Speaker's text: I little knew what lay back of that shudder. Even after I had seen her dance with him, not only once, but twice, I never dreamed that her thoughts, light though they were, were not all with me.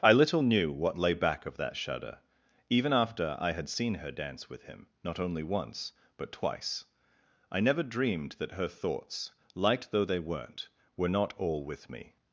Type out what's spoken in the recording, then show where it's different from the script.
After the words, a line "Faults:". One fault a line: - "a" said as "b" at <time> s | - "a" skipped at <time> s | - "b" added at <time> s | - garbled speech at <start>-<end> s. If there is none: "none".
I little knew what lay back of that shudder. Even after I had seen her dance with him, not only once, but twice, I never dreamed that her thoughts, light though they weren't, were not all with me.
Faults:
- "were" said as "weren't" at 10.2 s